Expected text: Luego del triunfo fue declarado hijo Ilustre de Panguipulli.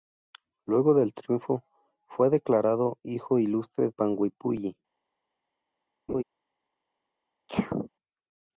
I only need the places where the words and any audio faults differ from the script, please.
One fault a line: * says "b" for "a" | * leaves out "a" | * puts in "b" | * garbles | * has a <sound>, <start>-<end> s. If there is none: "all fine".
* leaves out "de"
* has a laugh, 6.1-6.2 s
* has a sneeze, 7.5-7.9 s